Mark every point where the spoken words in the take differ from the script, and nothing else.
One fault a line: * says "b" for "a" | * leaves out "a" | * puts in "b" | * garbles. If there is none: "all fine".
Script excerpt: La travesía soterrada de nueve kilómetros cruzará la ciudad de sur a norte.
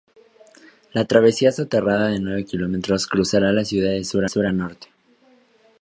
* puts in "sur"